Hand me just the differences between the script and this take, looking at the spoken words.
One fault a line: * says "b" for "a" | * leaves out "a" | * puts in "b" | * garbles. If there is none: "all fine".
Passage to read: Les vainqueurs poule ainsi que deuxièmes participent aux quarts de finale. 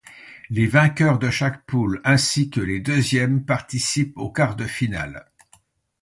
* puts in "de chaque"
* puts in "les"